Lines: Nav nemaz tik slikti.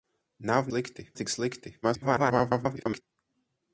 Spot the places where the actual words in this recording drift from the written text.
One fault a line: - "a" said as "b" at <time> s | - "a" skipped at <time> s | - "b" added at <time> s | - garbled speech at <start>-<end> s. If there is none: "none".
- "nemaz" said as "slikti" at 0.7 s
- garbled speech at 1.8-3.0 s